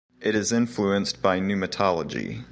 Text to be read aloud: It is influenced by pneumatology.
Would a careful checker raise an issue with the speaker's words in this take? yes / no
no